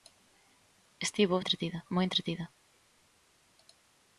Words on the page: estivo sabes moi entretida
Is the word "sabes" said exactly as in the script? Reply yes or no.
no